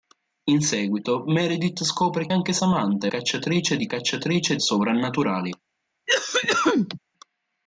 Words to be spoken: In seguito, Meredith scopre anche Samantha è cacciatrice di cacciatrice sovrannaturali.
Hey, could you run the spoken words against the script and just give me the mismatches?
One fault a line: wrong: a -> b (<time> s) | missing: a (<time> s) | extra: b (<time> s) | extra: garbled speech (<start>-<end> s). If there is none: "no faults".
no faults